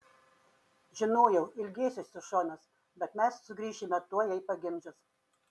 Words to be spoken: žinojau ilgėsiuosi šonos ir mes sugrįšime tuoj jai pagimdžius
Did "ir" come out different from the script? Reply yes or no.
yes